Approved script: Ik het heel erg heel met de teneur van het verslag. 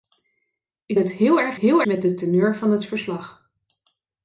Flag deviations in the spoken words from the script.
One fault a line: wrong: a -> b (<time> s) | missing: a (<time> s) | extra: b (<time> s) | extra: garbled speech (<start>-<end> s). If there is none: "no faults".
no faults